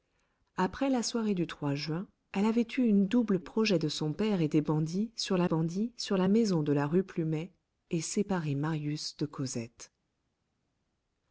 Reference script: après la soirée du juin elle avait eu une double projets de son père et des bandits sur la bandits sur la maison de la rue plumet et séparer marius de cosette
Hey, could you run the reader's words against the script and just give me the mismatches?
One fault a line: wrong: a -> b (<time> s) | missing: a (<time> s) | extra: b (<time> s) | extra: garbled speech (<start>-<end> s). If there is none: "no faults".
no faults